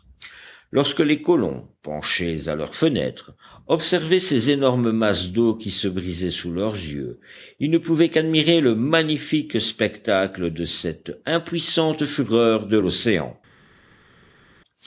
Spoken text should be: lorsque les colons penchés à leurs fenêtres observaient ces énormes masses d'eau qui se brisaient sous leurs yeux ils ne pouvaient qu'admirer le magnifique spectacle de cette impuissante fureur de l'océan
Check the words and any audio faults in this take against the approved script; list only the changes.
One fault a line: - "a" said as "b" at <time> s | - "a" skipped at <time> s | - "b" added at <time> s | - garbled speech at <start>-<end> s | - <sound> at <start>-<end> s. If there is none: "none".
none